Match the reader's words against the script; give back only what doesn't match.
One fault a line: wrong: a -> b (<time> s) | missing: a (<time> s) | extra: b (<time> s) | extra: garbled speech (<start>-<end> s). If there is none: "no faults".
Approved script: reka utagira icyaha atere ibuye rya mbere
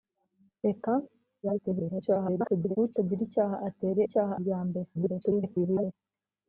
extra: garbled speech (1.4-2.8 s)
wrong: ibuye -> icyaha (4.0 s)
extra: garbled speech (4.9-5.9 s)